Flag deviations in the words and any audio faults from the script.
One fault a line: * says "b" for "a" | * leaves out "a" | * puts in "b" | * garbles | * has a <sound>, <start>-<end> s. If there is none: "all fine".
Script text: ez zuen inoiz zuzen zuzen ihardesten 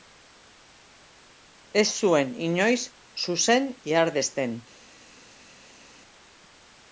* leaves out "zuzen"